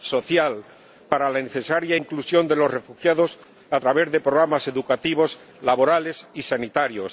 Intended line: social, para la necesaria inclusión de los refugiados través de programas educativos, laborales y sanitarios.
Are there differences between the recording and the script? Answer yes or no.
yes